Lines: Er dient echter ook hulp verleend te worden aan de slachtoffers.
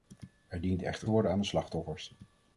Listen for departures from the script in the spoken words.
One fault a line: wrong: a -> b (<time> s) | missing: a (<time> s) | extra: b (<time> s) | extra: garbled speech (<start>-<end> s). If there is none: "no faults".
missing: ook hulp verleend (1.1 s)